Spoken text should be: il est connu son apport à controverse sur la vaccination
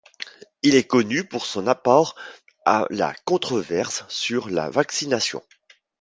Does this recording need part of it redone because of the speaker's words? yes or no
yes